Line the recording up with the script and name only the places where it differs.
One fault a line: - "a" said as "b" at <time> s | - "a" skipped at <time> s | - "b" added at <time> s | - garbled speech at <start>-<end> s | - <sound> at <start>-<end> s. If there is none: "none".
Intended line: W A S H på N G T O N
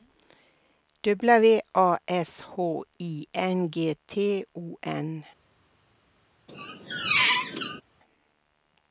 - "på" said as "I" at 3.0 s
- squeak at 6.5-7.8 s